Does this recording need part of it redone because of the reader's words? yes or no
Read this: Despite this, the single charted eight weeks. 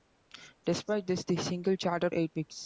no